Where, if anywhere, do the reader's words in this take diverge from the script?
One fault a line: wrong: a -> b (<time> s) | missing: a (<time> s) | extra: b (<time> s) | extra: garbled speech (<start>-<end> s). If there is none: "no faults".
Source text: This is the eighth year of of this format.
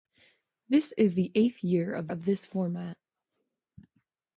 no faults